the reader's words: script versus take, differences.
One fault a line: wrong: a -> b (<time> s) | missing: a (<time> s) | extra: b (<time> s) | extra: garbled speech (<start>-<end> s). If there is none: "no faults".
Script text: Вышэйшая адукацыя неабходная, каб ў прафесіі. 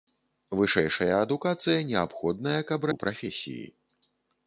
no faults